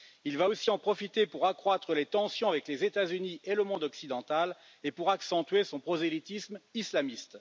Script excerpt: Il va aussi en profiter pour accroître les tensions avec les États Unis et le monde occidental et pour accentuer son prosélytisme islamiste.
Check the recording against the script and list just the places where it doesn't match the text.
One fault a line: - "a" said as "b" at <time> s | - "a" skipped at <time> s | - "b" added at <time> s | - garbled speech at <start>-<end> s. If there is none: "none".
none